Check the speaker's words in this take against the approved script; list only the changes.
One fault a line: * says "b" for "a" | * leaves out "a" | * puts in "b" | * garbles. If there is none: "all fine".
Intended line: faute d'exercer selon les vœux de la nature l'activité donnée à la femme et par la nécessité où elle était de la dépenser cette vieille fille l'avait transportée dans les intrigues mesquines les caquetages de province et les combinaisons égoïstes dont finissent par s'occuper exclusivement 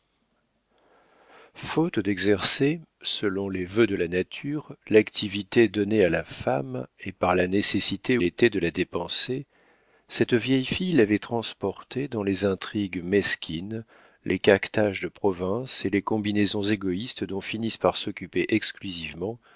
* leaves out "où elle"